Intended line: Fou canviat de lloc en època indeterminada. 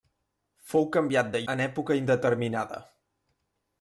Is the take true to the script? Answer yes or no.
no